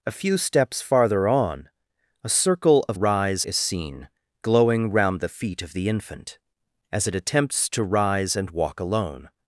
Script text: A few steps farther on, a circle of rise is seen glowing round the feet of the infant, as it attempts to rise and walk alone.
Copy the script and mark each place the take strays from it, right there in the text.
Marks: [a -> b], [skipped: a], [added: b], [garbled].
A few steps farther on, a circle of rise is seen glowing round the feet of the infant, as it attempts to rise and walk alone.